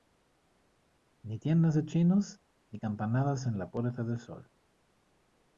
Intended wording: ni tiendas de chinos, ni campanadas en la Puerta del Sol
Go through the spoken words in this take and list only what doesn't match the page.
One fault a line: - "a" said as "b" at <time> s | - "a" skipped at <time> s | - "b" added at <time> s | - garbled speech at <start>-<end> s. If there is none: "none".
none